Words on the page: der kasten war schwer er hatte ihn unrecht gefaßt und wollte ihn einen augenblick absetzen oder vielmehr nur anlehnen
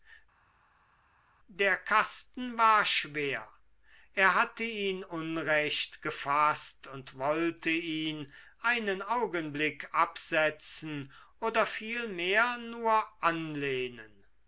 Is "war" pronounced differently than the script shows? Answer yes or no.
no